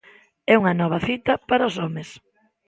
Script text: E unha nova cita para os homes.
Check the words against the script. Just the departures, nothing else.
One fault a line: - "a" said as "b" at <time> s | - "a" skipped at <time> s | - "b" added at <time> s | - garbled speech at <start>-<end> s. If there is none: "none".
none